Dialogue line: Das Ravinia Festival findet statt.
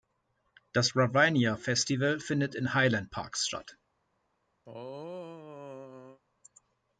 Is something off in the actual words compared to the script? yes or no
yes